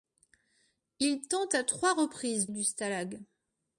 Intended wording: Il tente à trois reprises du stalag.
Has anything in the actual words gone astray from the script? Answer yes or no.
no